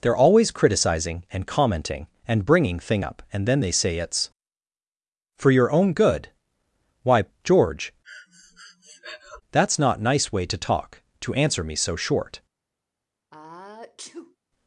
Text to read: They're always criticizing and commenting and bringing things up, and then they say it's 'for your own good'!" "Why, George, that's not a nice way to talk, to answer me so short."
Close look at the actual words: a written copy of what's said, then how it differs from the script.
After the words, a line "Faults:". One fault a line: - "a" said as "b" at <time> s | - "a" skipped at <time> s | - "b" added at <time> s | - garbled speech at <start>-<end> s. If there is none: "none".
They're always criticizing and commenting and bringing thing up, and then they say it's 'for your own good'!" "Why, George, that's not nice way to talk, to answer me so short."
Faults:
- "things" said as "thing" at 2.8 s
- "a" skipped at 10.0 s